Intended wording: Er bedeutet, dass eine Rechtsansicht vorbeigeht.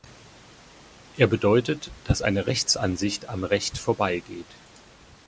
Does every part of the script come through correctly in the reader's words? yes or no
no